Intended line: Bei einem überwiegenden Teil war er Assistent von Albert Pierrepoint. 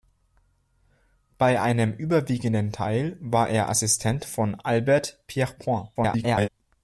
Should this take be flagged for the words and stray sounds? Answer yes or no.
yes